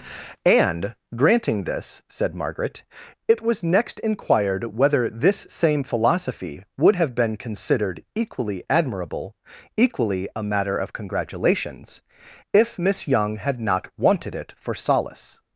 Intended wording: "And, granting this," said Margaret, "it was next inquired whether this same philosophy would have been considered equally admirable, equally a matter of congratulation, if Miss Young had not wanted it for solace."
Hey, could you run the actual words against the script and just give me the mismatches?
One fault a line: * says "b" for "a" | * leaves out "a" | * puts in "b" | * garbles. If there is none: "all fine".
* says "congratulations" for "congratulation"